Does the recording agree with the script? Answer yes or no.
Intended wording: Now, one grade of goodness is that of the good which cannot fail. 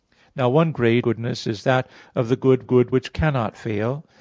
no